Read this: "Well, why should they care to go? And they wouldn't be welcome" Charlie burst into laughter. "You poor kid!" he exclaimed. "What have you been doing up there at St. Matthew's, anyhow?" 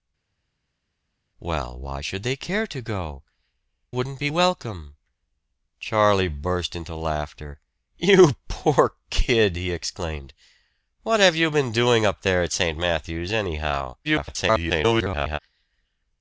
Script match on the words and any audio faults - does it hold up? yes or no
no